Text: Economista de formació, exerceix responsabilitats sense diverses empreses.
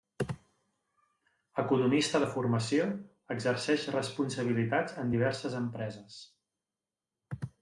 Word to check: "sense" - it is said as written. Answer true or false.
false